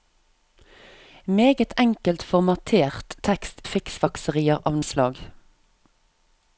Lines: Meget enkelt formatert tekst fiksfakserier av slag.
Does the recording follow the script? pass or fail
pass